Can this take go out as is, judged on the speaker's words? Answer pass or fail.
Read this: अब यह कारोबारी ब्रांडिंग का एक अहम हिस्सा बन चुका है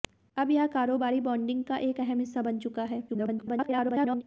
fail